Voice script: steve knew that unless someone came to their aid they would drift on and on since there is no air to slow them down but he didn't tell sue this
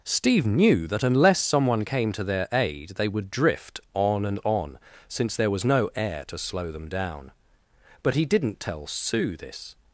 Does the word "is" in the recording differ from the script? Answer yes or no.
yes